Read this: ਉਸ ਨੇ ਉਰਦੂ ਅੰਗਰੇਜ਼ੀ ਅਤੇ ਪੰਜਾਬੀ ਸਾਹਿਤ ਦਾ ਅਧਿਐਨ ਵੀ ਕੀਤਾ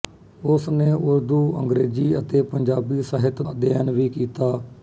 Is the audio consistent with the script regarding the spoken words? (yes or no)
no